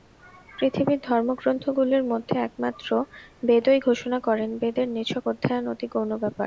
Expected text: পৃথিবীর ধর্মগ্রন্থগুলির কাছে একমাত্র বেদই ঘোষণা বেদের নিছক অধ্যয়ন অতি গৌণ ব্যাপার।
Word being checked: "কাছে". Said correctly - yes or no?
no